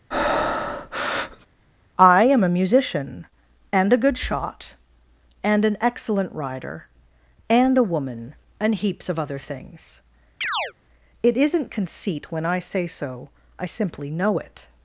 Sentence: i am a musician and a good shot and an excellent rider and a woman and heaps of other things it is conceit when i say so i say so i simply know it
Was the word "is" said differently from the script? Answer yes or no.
yes